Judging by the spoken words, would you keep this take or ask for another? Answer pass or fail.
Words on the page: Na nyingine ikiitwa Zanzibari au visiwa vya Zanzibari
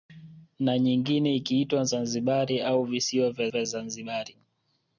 fail